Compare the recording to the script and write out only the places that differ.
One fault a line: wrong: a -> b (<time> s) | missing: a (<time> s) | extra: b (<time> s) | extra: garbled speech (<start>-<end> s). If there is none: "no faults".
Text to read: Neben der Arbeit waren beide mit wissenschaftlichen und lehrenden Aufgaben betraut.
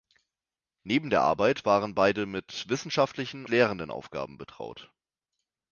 missing: und (3.4 s)